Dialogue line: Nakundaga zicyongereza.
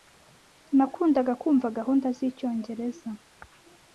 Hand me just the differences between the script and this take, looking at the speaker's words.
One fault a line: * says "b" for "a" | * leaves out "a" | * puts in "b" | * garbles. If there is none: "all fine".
* puts in "kumva gahunda"